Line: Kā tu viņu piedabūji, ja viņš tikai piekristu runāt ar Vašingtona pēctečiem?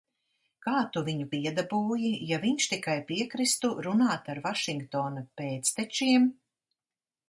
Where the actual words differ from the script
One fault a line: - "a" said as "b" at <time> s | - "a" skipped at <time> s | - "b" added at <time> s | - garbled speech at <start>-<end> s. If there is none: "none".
none